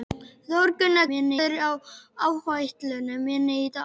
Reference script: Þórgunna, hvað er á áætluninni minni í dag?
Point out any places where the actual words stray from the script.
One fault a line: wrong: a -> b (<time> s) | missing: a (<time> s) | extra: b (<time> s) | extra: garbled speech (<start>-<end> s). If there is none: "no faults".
wrong: hvað -> minni (1.1 s)